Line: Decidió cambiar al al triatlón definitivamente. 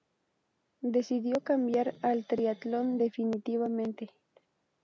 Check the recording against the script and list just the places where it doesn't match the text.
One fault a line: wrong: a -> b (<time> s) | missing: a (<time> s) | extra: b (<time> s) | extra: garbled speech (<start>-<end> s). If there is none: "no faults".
missing: al (2.2 s)